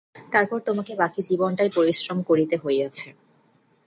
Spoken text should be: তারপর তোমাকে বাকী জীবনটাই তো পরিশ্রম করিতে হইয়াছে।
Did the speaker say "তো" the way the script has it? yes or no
no